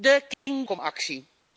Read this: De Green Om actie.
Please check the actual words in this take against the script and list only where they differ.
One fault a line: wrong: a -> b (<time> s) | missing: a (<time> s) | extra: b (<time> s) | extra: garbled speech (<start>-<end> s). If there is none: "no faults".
no faults